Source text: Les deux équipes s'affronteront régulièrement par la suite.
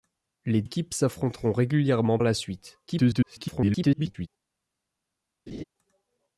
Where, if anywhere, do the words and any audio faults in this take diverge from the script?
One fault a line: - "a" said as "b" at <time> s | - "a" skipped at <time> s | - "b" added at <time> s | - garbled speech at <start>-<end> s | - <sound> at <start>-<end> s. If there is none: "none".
- "deux" skipped at 0.6 s
- "par" skipped at 2.2 s
- garbled speech at 2.9-4.3 s
- laugh at 5.5-5.6 s